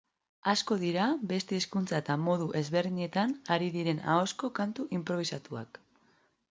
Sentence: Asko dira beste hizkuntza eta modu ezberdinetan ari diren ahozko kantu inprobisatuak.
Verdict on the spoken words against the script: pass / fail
pass